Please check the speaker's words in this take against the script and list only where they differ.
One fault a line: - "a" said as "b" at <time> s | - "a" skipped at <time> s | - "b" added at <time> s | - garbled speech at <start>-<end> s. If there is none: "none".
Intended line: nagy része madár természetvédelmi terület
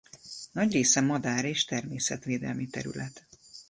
- "és" added at 1.4 s